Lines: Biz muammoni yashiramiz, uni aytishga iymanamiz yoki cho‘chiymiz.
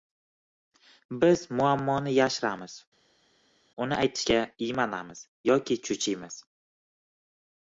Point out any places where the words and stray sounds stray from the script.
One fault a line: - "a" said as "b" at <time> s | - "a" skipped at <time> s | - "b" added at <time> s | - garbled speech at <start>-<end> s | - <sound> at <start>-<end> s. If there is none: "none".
none